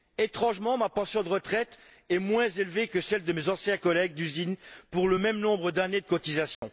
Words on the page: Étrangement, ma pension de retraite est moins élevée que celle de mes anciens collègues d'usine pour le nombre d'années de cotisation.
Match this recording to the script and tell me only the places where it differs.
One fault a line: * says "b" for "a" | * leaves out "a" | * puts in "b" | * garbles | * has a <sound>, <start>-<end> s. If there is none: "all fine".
* puts in "même"
* has a dropout, 6.5-6.6 s